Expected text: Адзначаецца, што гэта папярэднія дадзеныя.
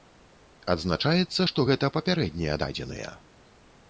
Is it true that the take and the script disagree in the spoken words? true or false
false